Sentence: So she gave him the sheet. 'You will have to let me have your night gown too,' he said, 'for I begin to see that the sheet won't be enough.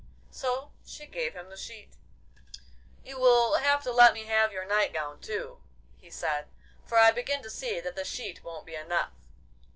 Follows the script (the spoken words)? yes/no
yes